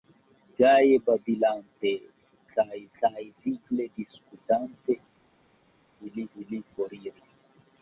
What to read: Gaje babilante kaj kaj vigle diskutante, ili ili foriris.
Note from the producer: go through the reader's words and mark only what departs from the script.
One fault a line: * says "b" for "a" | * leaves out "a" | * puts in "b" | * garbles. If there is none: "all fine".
all fine